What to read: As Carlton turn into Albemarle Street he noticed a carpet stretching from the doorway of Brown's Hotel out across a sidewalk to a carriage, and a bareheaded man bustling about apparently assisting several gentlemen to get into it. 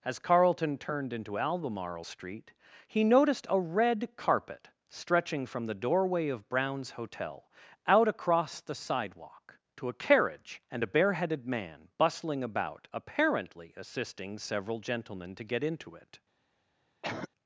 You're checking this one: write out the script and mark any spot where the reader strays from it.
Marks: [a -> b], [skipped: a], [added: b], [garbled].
As Carlton [turn -> turned] into Albemarle Street he noticed a [added: red] carpet stretching from the doorway of Brown's Hotel out across [a -> the] sidewalk to a carriage, and a bareheaded man bustling about apparently assisting several gentlemen to get into it.